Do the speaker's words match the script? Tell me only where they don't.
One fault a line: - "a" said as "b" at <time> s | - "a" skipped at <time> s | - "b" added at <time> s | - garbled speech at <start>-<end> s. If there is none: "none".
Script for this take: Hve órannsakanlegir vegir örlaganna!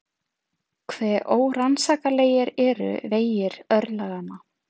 - "eru" added at 2.6 s